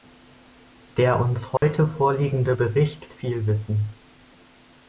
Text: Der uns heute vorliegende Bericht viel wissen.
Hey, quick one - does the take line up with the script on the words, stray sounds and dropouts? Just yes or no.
no